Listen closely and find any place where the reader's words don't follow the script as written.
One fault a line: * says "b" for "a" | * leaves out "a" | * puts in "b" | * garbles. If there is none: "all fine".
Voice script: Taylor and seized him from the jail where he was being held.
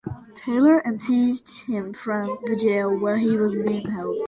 all fine